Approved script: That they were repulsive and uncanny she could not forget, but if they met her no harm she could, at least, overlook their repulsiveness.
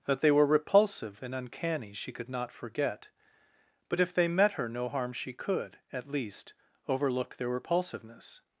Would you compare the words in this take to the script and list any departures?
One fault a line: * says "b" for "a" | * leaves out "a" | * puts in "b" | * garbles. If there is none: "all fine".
all fine